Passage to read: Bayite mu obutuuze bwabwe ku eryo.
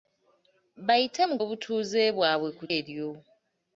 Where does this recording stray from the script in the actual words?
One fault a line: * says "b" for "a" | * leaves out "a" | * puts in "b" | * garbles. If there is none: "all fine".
all fine